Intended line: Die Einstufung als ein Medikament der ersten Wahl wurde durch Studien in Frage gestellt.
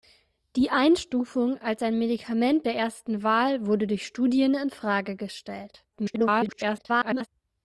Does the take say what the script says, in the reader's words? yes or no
no